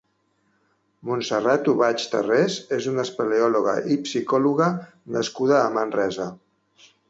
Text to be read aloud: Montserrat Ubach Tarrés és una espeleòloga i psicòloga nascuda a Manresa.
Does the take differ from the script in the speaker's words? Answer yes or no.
no